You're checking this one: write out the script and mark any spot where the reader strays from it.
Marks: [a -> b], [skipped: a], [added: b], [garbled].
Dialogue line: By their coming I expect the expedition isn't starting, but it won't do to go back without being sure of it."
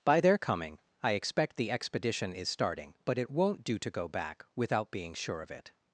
By their coming I expect the expedition [isn't -> is] starting, but it won't do to go back without being sure of it."